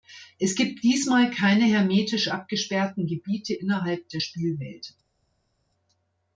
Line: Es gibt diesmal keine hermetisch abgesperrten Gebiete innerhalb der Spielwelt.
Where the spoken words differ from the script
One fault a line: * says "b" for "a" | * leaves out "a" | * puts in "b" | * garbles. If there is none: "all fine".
all fine